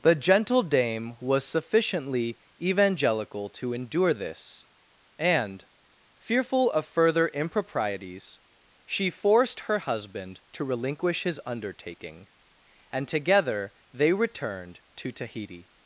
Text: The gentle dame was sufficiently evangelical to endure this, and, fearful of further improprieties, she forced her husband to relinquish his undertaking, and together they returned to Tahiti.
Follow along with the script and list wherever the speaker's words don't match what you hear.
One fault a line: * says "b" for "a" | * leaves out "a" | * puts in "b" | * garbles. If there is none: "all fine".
all fine